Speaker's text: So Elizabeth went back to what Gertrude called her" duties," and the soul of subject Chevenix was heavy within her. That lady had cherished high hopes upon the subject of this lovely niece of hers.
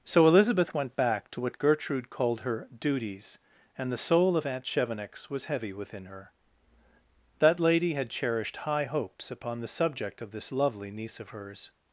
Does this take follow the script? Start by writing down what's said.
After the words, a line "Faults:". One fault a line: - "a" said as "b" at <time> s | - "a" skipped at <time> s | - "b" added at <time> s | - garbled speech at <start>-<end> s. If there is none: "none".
So Elizabeth went back to what Gertrude called her" duties," and the soul of aunt Chevenix was heavy within her. That lady had cherished high hopes upon the subject of this lovely niece of hers.
Faults:
- "subject" said as "aunt" at 4.5 s